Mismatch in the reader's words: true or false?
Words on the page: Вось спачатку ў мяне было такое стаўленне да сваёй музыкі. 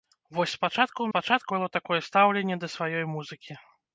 true